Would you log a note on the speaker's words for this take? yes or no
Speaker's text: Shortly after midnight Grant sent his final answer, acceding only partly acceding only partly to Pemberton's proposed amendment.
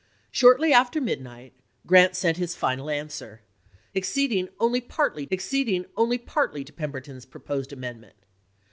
no